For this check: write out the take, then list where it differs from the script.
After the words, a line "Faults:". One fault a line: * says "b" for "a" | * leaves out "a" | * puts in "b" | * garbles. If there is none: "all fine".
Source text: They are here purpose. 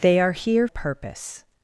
They are here purpose.
Faults:
all fine